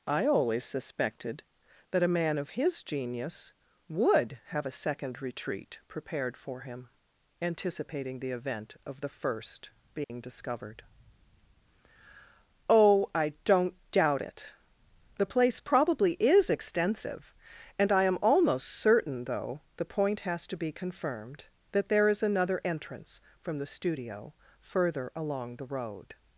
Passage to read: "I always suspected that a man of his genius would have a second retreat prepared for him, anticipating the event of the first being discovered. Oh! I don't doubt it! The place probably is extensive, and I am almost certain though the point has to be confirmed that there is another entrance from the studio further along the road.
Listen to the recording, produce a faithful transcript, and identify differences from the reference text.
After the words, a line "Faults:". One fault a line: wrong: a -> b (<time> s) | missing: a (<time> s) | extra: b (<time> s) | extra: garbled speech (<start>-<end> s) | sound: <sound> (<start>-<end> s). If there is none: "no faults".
"I always suspected that a man of his genius would have a second retreat prepared for him, anticipating the event of the first being discovered. Oh! I don't doubt it! The place probably is extensive, and I am almost certain though the point has to be confirmed that there is another entrance from the studio further along the road.
Faults:
sound: dropout (10.0-10.1 s)